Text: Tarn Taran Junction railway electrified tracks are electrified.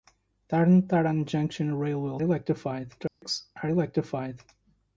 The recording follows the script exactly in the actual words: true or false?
true